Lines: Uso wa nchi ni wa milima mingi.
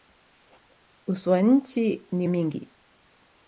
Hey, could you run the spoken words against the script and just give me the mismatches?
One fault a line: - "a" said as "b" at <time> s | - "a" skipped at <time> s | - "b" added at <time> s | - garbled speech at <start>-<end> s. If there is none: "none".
- "wa milima" skipped at 2.3 s